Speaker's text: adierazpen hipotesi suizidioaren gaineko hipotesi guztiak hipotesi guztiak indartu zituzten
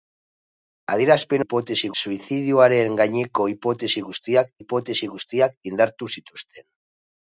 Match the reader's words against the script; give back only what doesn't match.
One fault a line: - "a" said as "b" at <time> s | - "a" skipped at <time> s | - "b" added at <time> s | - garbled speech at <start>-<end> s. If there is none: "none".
none